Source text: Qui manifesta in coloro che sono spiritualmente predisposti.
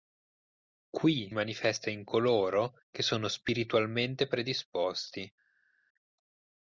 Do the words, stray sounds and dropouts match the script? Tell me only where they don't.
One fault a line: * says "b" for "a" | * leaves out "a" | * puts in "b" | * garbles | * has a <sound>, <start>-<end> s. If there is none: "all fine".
all fine